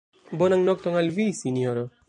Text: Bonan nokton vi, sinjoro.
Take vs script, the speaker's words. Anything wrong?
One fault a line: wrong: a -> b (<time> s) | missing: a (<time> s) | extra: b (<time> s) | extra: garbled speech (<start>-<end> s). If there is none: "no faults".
extra: al (0.9 s)